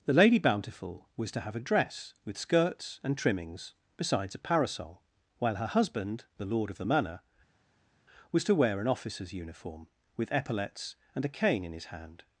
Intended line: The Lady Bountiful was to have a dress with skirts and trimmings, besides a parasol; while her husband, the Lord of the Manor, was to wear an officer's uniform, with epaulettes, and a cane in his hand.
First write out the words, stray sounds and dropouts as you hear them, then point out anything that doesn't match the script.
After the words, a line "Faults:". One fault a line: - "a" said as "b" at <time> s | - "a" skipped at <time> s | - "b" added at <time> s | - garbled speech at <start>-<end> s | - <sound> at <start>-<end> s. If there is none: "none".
The Lady Bountiful was to have a dress with skirts and trimmings, besides a parasol; while her husband, the Lord of the Manor, was to wear an officer's uniform, with epaulettes, and a cane in his hand.
Faults:
none